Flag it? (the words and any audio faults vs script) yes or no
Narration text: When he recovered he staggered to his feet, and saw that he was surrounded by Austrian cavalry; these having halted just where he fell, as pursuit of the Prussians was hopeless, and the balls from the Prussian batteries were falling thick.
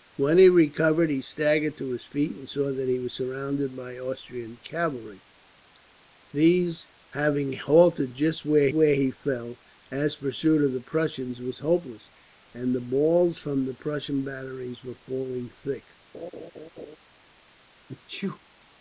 yes